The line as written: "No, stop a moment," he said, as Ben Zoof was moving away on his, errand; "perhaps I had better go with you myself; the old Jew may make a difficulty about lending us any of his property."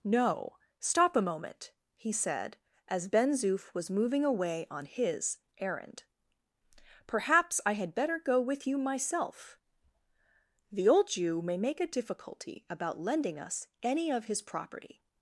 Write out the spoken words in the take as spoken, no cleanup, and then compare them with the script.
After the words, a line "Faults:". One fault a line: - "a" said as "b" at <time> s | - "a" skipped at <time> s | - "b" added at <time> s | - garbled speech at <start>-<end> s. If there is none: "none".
"No, stop a moment," he said, as Ben Zoof was moving away on his, errand; "perhaps I had better go with you myself; the old Jew may make a difficulty about lending us any of his property."
Faults:
none